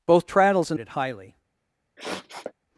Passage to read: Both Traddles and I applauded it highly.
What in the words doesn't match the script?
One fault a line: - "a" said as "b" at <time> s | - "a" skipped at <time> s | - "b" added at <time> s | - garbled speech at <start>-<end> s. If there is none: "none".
- "I applauded" skipped at 0.8 s